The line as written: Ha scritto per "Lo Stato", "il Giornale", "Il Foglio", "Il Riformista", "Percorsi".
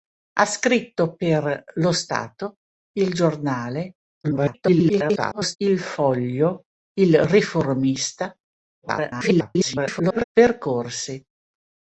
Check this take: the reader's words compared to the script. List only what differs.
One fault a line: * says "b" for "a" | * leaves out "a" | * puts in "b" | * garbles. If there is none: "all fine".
* garbles
* garbles